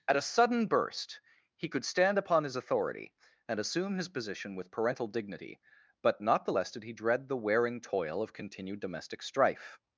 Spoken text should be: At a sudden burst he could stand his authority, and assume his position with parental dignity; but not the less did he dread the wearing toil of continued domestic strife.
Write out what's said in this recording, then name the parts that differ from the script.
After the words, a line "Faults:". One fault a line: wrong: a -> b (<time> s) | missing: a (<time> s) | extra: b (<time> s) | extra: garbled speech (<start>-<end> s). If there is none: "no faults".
At a sudden burst he could stand upon his authority, and assume his position with parental dignity; but not the less did he dread the wearing toil of continued domestic strife.
Faults:
extra: upon (2.2 s)